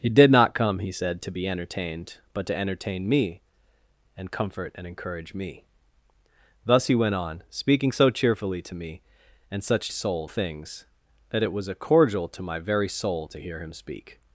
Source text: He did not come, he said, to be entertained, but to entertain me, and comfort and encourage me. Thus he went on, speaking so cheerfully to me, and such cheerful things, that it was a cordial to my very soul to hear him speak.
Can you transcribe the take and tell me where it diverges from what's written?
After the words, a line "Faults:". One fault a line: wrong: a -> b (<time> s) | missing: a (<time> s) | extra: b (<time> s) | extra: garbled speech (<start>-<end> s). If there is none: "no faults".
He did not come, he said, to be entertained, but to entertain me, and comfort and encourage me. Thus he went on, speaking so cheerfully to me, and such soul things, that it was a cordial to my very soul to hear him speak.
Faults:
wrong: cheerful -> soul (9.9 s)